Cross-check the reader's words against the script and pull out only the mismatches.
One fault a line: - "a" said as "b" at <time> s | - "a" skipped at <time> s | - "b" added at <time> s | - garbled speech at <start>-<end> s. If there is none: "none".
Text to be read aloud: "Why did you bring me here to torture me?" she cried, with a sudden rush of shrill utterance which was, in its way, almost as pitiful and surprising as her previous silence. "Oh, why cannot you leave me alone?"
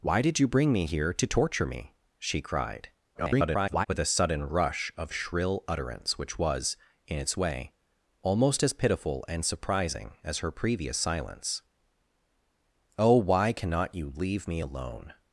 - garbled speech at 3.1-3.9 s